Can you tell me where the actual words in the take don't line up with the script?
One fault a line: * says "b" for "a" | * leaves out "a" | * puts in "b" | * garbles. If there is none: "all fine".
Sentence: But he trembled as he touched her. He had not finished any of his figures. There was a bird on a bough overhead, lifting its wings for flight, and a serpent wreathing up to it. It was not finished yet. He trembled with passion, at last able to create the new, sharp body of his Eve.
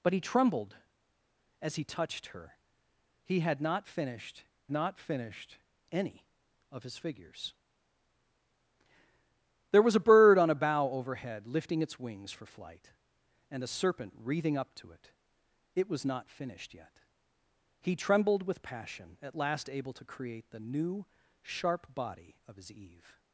* puts in "not finished"